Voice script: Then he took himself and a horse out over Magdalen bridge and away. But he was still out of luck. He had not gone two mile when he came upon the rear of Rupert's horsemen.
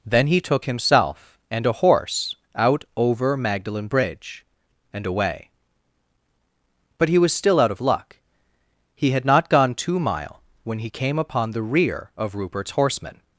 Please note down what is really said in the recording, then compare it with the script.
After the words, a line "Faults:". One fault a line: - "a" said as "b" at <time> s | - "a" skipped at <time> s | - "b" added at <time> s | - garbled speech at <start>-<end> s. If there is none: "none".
Then he took himself and a horse out over Magdalen bridge and away. But he was still out of luck. He had not gone two mile when he came upon the rear of Rupert's horsemen.
Faults:
none